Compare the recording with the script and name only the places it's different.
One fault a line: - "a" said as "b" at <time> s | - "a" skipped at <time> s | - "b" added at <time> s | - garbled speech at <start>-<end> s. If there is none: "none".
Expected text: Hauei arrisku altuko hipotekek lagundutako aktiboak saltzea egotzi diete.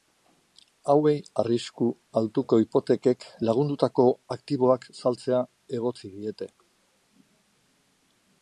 none